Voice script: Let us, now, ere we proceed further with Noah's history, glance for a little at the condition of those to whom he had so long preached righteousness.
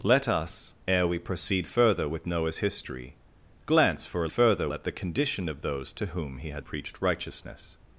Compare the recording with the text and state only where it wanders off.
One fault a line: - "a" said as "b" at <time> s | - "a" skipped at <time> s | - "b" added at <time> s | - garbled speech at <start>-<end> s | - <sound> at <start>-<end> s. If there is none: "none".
- "now" skipped at 0.7 s
- "little" said as "further" at 4.3 s
- "so long" skipped at 6.7 s